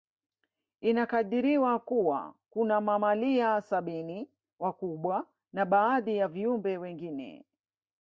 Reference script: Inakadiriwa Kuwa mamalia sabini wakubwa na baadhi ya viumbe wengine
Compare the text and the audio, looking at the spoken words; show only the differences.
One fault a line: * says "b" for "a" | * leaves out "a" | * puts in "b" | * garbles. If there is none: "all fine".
* puts in "kuna"